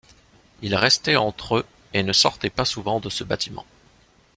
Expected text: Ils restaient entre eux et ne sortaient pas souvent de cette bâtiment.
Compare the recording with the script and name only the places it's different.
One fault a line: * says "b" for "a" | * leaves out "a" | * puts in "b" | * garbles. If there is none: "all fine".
* says "ce" for "cette"